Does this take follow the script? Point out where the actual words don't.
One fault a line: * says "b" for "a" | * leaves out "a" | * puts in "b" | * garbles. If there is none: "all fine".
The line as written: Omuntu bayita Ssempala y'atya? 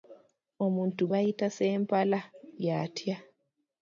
all fine